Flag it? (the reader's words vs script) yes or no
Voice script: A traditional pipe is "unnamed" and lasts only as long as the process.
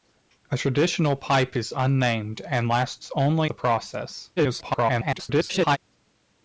yes